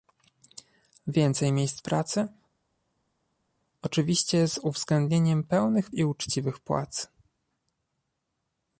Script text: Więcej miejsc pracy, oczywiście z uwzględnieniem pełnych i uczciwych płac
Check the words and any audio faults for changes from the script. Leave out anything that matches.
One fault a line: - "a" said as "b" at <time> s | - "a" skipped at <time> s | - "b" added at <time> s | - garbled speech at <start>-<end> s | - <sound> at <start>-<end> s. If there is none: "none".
none